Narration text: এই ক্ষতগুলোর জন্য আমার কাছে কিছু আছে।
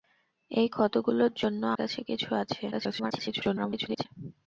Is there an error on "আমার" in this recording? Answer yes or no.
yes